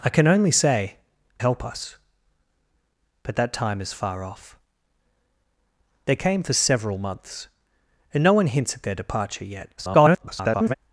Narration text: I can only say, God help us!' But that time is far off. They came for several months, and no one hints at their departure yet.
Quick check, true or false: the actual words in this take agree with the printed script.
false